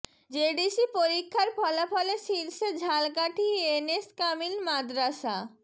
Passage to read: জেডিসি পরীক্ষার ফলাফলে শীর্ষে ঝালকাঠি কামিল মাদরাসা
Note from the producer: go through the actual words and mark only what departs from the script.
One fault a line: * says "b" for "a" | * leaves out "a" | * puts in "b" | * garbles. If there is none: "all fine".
* puts in "এন এস"